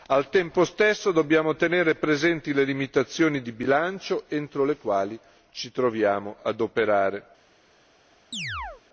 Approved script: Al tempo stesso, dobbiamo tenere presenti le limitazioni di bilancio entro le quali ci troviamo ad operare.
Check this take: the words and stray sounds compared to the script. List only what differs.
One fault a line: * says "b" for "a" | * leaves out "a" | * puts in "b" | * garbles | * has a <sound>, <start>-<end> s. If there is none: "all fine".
* has a chirp, 8.3-8.8 s